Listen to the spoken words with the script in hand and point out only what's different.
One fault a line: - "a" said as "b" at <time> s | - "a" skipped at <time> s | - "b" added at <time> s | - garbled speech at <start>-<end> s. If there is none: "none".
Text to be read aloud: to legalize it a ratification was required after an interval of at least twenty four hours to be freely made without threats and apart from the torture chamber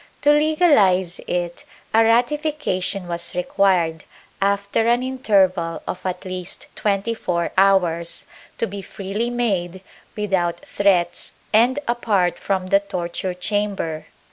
none